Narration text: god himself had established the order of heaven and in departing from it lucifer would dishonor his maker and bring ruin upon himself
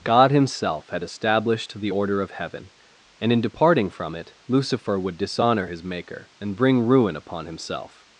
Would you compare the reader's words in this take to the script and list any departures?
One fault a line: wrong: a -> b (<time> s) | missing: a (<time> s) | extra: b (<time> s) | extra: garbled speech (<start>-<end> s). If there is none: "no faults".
no faults